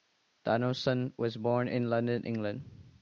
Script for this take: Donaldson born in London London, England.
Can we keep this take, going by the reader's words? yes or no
no